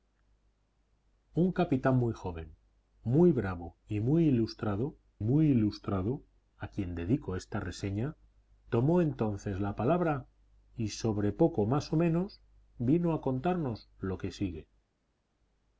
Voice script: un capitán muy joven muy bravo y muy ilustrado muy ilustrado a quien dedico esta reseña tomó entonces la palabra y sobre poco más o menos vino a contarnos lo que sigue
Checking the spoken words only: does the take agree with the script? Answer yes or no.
yes